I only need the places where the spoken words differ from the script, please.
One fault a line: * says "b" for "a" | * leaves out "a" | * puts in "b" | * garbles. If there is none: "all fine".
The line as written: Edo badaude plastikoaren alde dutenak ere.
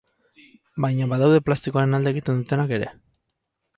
* says "Baina" for "Edo"
* puts in "egiten"